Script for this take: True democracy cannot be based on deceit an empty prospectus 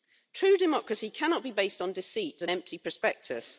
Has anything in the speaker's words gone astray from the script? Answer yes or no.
no